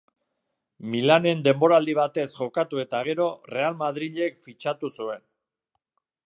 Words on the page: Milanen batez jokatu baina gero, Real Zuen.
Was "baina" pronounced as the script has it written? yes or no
no